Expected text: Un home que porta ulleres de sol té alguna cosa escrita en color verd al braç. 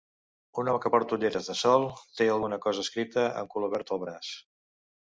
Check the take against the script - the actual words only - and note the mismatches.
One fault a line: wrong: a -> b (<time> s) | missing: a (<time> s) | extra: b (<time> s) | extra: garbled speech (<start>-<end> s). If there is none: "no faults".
no faults